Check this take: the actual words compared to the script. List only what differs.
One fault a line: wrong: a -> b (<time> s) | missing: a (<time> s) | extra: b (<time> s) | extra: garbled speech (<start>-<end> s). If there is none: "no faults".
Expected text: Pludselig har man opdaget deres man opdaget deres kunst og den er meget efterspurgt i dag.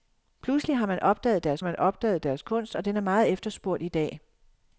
no faults